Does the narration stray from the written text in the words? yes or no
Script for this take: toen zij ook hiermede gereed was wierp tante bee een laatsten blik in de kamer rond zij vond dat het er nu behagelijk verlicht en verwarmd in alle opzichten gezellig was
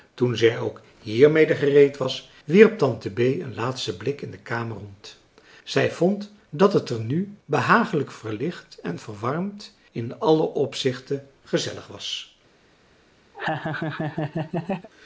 no